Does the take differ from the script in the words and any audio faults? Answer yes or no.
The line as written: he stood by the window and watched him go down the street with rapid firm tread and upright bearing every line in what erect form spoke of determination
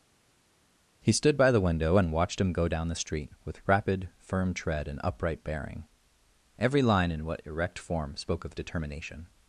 no